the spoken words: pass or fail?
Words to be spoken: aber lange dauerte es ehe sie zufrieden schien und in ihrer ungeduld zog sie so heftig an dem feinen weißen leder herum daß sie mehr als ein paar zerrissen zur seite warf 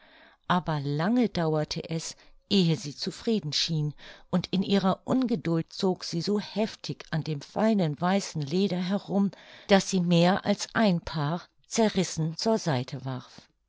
pass